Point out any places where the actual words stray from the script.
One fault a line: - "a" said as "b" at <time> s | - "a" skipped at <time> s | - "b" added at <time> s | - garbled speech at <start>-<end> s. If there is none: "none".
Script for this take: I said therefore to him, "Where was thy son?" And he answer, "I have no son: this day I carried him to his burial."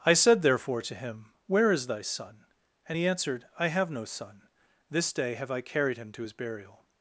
- "was" said as "is" at 1.7 s
- "answer" said as "answered" at 3.0 s
- "have" added at 5.3 s